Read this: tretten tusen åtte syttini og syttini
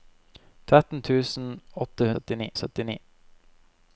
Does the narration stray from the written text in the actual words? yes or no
no